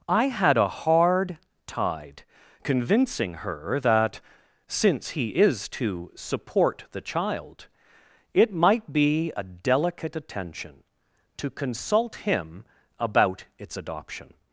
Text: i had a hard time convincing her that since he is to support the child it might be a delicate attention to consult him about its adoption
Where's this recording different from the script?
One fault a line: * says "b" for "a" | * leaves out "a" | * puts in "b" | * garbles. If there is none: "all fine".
* says "tide" for "time"